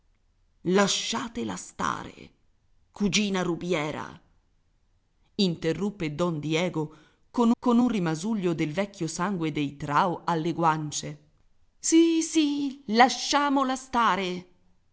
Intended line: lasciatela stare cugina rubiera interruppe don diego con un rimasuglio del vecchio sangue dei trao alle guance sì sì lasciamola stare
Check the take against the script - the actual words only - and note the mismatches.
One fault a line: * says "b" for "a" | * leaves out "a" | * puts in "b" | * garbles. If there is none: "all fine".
* puts in "con"